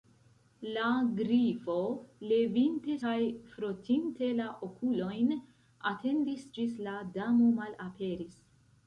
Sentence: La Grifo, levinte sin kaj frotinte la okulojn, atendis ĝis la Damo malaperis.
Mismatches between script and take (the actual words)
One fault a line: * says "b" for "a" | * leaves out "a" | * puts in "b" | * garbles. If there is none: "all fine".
* leaves out "sin"